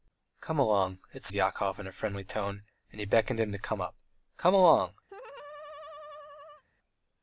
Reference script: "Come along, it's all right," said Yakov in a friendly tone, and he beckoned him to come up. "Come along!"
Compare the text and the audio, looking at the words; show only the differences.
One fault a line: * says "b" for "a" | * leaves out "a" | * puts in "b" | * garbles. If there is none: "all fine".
* leaves out "all right said"